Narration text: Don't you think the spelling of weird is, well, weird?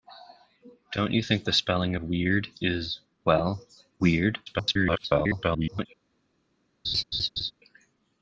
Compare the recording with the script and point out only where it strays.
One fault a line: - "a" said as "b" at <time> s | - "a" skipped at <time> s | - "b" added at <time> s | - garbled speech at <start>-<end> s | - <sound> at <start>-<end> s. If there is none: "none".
- garbled speech at 4.5-5.9 s
- laugh at 6.8-7.5 s